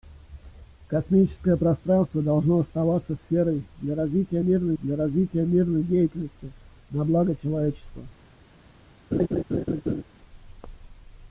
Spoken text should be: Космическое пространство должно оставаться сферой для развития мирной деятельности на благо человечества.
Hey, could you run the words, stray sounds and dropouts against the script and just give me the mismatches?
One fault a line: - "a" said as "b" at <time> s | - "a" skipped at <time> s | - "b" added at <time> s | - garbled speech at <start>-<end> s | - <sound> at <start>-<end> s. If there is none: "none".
- "для развития мирной" added at 4.8 s
- laugh at 9.1-10.0 s